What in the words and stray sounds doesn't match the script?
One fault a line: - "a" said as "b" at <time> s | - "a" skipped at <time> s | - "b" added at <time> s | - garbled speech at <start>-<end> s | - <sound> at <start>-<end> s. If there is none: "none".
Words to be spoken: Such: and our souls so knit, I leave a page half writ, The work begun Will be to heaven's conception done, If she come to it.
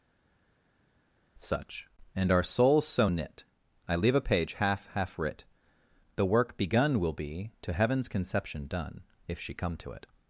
- "half" added at 4.9 s